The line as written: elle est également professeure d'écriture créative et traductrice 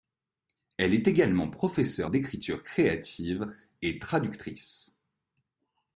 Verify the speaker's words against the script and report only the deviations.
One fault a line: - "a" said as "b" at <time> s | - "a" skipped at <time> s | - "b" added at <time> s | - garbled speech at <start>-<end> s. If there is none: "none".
none